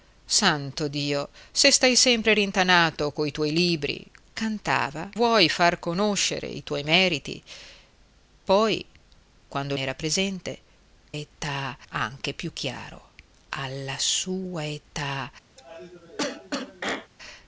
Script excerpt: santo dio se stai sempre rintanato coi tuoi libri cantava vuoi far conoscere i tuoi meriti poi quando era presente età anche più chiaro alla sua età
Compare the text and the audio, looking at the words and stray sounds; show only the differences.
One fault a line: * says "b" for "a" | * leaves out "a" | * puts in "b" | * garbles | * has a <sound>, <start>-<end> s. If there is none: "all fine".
* has a cough, 15.6-17.1 s